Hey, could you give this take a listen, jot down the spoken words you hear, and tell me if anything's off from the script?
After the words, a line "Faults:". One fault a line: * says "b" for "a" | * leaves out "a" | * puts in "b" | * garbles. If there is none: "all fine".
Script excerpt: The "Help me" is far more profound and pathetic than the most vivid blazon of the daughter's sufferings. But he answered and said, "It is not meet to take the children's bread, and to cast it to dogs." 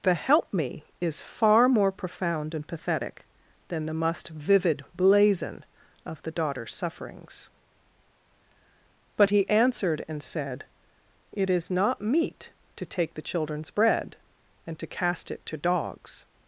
The "Help me" is far more profound and pathetic than the must vivid blazon of the daughter's sufferings. But he answered and said, "It is not meet to take the children's bread, and to cast it to dogs."
Faults:
* says "must" for "most"